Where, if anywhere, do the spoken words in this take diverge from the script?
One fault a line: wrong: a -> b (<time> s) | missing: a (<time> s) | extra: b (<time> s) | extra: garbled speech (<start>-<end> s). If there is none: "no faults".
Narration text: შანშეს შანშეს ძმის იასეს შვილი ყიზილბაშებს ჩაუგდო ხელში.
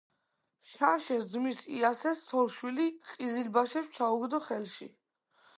missing: შანშეს (1.3 s)
extra: ცოლ (2.3 s)